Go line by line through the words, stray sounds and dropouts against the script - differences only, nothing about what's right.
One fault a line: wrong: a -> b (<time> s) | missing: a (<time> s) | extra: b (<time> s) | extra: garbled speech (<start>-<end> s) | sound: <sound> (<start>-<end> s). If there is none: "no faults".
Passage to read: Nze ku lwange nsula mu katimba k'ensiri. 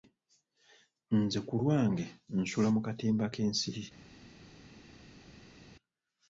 no faults